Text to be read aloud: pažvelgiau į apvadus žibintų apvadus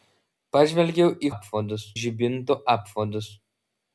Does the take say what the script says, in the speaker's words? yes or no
yes